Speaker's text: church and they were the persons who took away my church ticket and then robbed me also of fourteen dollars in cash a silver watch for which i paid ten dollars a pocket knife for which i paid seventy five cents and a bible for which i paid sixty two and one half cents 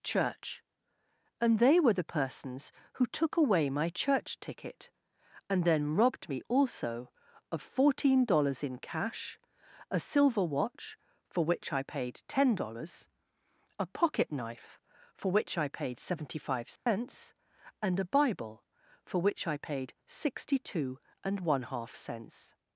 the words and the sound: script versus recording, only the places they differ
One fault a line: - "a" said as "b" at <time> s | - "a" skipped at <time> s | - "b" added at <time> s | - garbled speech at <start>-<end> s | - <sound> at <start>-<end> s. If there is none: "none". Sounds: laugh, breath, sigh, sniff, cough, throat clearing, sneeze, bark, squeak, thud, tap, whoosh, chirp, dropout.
- dropout at 16.8-16.9 s